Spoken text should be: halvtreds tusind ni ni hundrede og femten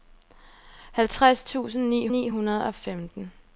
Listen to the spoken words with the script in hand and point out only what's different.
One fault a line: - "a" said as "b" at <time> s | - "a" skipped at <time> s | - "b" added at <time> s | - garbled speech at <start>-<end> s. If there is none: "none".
none